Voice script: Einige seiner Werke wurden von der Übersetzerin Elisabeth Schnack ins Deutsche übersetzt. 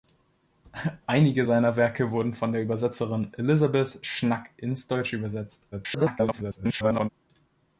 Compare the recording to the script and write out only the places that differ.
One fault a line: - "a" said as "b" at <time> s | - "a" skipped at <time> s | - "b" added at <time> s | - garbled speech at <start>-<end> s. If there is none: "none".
- garbled speech at 5.7-7.1 s